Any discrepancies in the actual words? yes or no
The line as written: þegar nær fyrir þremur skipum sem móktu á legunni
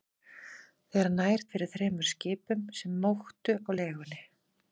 no